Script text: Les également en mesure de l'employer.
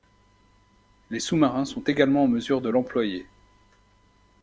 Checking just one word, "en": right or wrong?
right